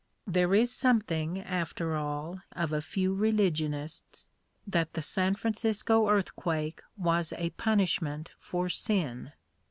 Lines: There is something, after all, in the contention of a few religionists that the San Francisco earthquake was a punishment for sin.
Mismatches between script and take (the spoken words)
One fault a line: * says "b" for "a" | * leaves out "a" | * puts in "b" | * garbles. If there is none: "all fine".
* leaves out "in the contention"